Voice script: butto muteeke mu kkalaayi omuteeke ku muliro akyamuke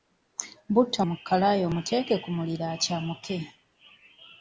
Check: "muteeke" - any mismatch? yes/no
yes